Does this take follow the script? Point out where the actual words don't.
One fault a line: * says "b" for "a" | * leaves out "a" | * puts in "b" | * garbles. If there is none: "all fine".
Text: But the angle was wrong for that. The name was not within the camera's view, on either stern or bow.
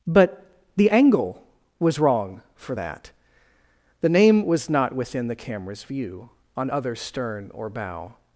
* says "other" for "either"